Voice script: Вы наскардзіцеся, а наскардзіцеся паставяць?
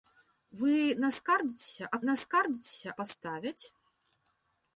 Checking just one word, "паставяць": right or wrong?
right